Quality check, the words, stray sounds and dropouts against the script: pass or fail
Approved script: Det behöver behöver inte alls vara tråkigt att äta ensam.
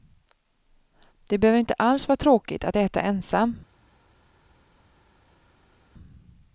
fail